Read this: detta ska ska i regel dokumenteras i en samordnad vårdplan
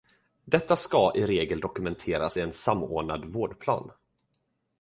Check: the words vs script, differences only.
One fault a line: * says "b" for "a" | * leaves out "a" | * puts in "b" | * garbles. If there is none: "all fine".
* leaves out "ska"